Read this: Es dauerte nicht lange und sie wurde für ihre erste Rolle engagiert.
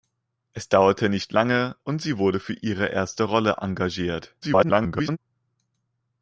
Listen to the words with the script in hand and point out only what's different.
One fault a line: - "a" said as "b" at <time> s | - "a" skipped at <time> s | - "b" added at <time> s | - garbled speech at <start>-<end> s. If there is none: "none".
- garbled speech at 4.4-5.2 s